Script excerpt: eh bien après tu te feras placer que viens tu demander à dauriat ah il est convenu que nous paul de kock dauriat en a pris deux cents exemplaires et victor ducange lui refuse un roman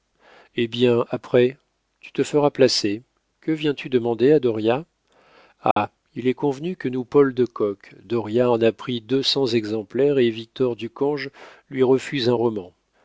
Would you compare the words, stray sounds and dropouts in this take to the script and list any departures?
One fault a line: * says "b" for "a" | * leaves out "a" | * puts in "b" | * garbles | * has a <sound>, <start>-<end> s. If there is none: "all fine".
* has a dropout, 5.7-5.8 s